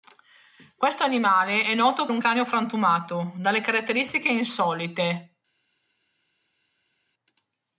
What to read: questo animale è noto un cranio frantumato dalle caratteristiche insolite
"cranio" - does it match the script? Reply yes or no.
yes